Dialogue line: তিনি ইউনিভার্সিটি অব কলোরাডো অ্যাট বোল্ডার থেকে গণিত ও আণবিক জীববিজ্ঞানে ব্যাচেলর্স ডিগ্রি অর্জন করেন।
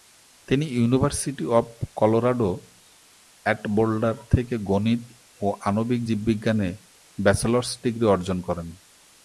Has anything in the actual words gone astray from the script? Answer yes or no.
no